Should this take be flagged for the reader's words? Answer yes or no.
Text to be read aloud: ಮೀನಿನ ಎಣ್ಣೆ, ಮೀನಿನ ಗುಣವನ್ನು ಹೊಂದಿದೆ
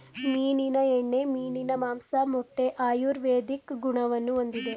yes